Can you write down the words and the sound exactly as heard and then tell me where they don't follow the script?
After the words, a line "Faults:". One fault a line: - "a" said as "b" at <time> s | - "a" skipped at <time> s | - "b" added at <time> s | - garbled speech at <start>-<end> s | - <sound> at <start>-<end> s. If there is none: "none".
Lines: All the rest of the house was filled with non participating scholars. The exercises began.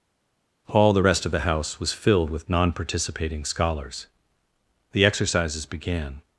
All the rest of the house was filled with non participating scholars. The exercises began.
Faults:
none